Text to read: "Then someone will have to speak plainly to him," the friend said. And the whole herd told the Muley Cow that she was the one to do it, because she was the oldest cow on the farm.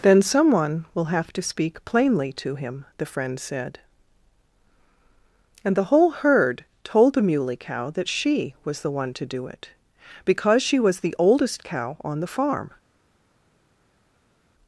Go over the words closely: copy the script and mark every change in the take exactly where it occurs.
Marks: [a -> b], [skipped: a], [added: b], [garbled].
"Then someone will have to speak plainly to him," the friend said. And the whole herd told the Muley Cow that she was the one to do it, because she was the oldest cow on the farm.